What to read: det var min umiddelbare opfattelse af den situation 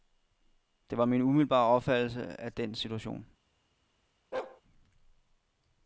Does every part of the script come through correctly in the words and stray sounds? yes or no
no